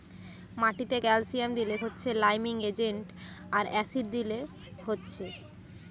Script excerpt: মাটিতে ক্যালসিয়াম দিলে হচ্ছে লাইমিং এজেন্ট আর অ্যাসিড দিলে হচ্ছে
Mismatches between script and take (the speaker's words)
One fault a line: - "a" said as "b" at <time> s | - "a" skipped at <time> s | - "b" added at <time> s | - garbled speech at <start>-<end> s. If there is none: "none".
none